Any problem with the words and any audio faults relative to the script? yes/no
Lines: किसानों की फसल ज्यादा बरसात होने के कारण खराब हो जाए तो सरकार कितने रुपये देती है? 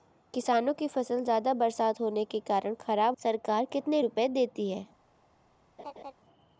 yes